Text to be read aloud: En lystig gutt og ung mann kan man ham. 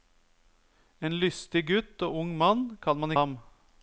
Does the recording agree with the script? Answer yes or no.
yes